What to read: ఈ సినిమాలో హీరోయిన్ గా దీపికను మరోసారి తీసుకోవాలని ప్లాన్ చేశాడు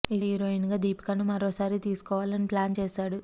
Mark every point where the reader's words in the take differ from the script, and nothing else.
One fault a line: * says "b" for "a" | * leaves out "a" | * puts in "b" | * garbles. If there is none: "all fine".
* leaves out "సినిమాలో"